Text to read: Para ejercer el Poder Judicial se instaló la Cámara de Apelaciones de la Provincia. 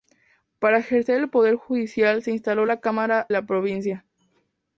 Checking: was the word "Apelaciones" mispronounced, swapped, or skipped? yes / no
yes